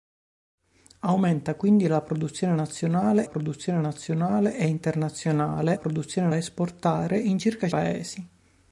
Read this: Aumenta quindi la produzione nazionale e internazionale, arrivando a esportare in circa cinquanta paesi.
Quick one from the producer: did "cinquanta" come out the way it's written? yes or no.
no